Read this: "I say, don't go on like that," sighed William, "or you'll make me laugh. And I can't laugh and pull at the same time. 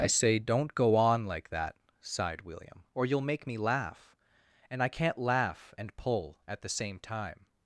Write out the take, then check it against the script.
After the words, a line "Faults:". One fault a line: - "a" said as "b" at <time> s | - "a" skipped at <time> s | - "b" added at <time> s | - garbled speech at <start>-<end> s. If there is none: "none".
"I say, don't go on like that," sighed William, "or you'll make me laugh. And I can't laugh and pull at the same time.
Faults:
none